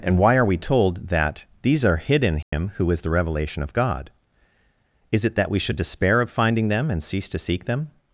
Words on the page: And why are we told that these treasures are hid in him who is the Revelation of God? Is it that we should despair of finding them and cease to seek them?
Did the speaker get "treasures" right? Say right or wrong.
wrong